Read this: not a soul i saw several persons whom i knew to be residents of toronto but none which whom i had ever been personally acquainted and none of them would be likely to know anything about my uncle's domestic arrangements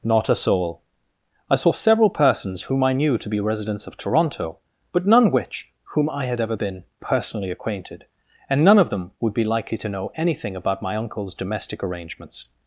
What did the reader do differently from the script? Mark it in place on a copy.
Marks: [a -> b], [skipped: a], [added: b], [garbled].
not a soul i saw several persons whom i knew to be residents of toronto but none which whom i had ever been personally acquainted and none of them would be likely to know anything about my uncle's domestic arrangements